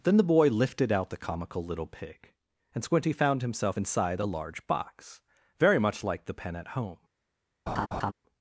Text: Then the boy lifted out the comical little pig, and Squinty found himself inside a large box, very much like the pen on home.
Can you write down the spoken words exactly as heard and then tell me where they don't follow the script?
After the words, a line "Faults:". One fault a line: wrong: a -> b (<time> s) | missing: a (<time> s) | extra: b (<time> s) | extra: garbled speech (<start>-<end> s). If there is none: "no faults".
Then the boy lifted out the comical little pig, and Squinty found himself inside a large box, very much like the pen at home.
Faults:
wrong: on -> at (6.5 s)